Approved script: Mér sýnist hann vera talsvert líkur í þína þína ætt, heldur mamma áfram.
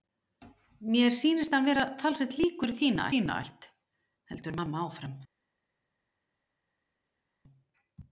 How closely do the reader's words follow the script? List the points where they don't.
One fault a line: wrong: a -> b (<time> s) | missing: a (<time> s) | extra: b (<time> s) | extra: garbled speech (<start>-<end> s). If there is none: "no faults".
no faults